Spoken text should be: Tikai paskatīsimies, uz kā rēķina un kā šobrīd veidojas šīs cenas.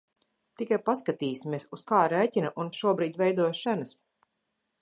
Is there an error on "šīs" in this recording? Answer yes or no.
yes